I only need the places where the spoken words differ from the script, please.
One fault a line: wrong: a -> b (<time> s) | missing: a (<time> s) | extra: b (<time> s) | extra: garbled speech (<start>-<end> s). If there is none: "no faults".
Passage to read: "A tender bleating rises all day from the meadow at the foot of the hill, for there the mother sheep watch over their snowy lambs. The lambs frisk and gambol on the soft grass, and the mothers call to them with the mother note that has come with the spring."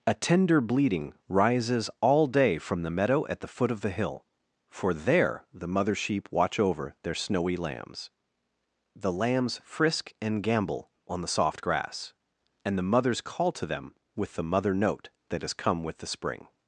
no faults